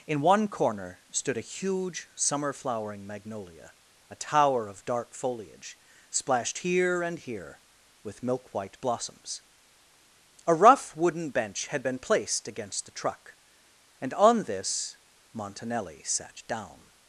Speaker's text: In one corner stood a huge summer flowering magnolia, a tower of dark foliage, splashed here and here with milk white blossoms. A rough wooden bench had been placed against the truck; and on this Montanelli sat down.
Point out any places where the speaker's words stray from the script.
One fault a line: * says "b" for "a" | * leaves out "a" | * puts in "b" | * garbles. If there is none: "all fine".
all fine